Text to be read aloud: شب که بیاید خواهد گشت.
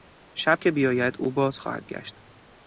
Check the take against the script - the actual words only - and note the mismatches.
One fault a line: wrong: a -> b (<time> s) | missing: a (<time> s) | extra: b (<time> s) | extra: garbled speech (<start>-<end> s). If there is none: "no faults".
extra: او باز (1.2 s)